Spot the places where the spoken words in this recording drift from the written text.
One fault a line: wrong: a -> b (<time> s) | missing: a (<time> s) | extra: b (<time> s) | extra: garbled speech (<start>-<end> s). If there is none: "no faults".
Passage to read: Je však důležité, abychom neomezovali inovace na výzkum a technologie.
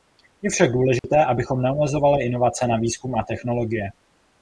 no faults